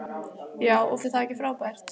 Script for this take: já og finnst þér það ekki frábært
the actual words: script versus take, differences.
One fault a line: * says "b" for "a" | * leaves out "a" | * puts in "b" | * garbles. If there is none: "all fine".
* leaves out "finnst"